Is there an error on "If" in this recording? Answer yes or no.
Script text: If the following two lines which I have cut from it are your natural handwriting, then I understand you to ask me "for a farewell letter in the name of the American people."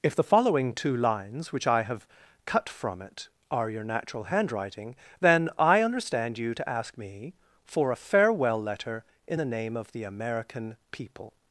no